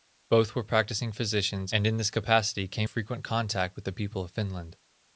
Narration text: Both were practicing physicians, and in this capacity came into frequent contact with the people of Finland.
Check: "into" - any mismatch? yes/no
yes